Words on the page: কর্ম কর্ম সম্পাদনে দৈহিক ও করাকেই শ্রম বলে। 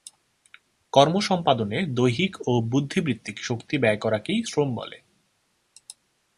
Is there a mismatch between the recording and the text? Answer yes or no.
yes